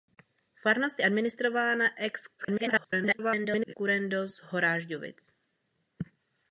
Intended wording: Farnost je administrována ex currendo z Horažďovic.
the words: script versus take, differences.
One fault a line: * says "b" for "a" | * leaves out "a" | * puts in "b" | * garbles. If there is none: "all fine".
* garbles